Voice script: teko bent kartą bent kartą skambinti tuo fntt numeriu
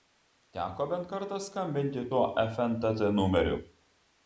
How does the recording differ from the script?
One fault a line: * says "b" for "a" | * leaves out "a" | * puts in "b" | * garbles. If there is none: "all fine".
* leaves out "bent kartą"